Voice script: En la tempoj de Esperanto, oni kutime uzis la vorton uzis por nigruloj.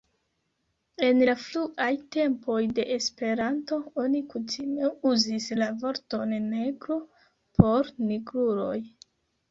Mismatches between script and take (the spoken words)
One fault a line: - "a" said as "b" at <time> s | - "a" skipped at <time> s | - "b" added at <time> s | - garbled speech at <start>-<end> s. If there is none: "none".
- "fruaj" added at 1.4 s
- "uzis" said as "negro" at 6.5 s